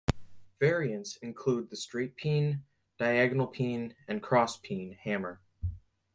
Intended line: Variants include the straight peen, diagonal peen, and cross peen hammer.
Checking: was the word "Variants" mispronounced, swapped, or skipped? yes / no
no